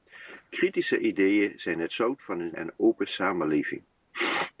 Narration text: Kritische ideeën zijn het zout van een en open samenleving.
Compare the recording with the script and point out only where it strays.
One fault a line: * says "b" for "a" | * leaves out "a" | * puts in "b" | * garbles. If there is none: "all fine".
all fine